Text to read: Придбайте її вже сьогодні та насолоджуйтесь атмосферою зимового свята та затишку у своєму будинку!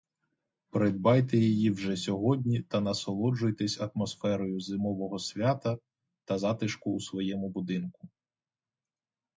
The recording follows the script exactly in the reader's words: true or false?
true